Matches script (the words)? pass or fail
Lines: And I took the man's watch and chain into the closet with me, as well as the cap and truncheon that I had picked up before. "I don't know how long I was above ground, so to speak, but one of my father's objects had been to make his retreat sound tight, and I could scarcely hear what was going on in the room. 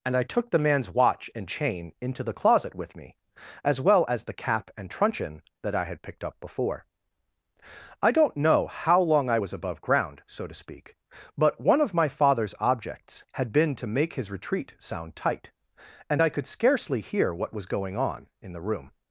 pass